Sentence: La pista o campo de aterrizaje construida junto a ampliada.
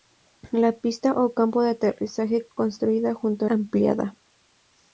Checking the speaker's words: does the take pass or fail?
pass